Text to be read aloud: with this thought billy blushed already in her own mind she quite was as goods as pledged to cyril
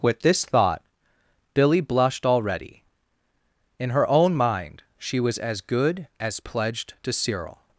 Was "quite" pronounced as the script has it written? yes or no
no